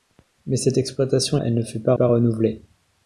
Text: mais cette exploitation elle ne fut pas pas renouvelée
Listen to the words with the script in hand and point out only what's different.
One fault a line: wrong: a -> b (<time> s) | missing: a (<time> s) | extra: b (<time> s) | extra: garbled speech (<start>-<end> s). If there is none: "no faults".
no faults